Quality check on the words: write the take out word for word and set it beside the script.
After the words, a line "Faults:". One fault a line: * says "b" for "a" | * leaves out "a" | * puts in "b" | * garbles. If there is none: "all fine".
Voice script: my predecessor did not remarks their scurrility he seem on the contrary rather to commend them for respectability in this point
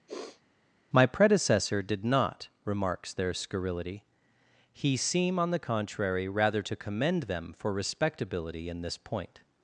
my predecessor did not remarks their scurrility he seem on the contrary rather to commend them for respectability in this point
Faults:
all fine